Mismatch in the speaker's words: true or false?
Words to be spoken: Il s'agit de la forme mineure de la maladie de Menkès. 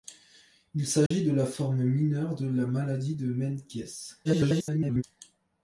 true